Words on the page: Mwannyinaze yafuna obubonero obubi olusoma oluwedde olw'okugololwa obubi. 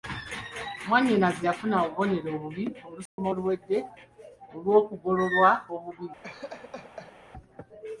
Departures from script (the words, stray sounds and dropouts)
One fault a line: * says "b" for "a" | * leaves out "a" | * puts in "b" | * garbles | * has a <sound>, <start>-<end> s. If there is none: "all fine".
* has a dropout, 3.1-3.2 s
* has a laugh, 6.2-7.2 s